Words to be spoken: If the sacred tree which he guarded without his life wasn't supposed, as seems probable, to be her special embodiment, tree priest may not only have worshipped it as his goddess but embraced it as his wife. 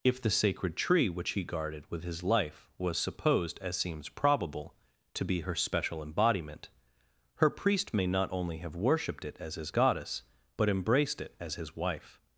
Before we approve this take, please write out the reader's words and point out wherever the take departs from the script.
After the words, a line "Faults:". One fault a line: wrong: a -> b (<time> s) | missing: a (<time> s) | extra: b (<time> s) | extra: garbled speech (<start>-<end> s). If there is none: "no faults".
If the sacred tree which he guarded with his life was supposed, as seems probable, to be her special embodiment, her priest may not only have worshipped it as his goddess but embraced it as his wife.
Faults:
wrong: without -> with (1.9 s)
wrong: wasn't -> was (2.8 s)
wrong: tree -> her (7.3 s)